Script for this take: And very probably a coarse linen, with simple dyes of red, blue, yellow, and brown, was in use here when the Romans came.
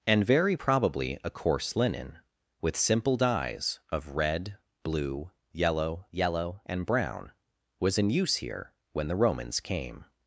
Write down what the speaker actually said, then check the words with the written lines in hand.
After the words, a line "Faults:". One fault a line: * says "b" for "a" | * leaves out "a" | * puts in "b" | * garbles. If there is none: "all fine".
And very probably a coarse linen, with simple dyes of red, blue, yellow yellow, and brown, was in use here when the Romans came.
Faults:
* puts in "yellow"